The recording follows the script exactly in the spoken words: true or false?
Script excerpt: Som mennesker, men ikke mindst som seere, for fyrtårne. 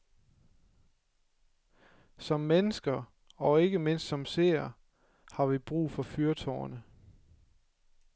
false